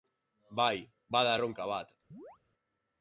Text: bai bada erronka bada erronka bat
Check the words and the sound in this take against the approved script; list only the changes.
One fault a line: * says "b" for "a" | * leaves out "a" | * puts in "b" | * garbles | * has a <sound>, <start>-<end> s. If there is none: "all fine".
* leaves out "bada erronka"
* has a chirp, 2.1-2.4 s